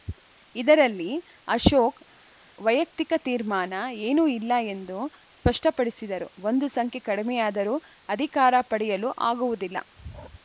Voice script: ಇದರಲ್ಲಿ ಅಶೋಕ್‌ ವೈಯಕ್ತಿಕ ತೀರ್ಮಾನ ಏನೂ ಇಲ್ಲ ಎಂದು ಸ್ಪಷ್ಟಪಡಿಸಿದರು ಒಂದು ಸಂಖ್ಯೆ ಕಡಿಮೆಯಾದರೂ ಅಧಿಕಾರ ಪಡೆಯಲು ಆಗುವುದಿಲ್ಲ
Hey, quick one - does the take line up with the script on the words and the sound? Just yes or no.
yes